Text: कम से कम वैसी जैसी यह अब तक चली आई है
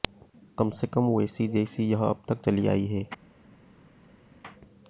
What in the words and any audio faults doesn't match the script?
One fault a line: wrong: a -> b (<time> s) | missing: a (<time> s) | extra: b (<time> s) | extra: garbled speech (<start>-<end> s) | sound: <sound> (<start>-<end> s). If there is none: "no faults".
no faults